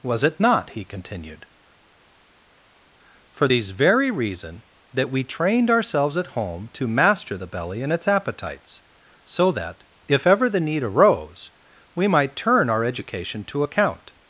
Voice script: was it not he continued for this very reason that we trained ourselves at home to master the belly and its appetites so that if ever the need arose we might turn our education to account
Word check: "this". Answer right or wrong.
wrong